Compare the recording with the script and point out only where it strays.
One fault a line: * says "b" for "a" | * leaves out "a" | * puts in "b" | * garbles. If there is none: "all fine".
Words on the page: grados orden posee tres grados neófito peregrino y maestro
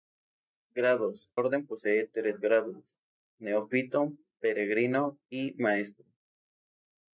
all fine